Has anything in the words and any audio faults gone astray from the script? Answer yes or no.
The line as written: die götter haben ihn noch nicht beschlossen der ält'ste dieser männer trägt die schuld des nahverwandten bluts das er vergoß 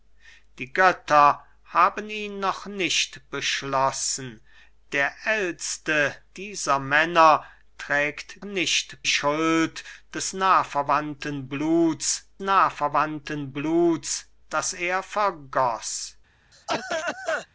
yes